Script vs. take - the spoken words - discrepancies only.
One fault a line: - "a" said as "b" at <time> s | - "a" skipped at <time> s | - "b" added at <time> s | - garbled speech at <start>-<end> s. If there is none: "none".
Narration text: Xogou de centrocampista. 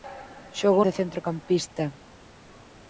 none